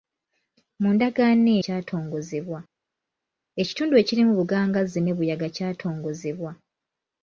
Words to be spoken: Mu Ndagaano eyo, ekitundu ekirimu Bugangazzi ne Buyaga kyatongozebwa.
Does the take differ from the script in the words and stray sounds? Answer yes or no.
yes